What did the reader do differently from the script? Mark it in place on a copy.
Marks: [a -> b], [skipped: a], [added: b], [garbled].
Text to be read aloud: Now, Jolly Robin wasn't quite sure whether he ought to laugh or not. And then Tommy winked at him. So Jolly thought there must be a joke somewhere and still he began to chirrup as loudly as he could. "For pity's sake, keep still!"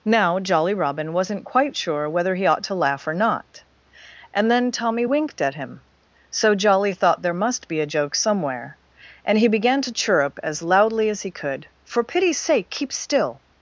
Now, Jolly Robin wasn't quite sure whether he ought to laugh or not. And then Tommy winked at him. So Jolly thought there must be a joke somewhere and [skipped: still] he began to chirrup as loudly as he could. "For pity's sake, keep still!"